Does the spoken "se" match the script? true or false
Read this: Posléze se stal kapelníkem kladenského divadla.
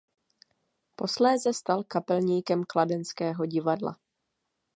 false